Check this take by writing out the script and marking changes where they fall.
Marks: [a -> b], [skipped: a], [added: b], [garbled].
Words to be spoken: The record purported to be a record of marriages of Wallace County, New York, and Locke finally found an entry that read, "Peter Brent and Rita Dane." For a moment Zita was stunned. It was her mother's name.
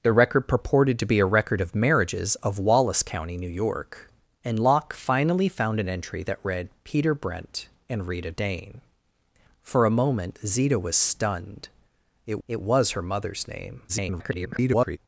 The record purported to be a record of marriages of Wallace County, New York, and Locke finally found an entry that read, "Peter Brent and Rita Dane." For a moment Zita was stunned. It [added: it] was her mother's name. [garbled]